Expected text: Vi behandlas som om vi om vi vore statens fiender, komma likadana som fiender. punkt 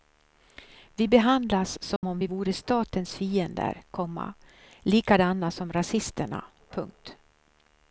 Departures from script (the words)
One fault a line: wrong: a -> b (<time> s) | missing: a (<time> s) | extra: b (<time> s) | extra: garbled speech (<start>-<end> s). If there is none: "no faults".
missing: om vi (2.3 s)
wrong: fiender -> rasisterna (5.7 s)